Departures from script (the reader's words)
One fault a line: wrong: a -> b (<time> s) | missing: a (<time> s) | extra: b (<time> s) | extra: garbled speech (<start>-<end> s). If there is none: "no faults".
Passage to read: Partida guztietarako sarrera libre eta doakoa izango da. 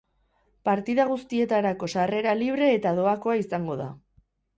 no faults